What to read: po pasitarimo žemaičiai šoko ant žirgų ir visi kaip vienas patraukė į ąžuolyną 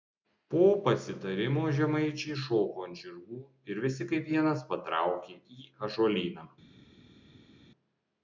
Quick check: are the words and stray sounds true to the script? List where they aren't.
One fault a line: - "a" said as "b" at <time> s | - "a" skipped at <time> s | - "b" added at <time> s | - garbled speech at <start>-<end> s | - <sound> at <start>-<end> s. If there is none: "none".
none